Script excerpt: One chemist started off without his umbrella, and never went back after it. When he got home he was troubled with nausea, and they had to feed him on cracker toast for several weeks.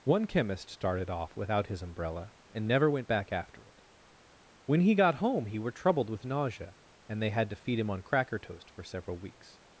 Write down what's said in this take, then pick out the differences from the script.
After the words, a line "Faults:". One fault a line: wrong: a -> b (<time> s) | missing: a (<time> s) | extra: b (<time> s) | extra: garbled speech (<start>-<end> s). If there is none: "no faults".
One chemist started off without his umbrella, and never went back after it. When he got home he were troubled with nausea, and they had to feed him on cracker toast for several weeks.
Faults:
wrong: was -> were (5.6 s)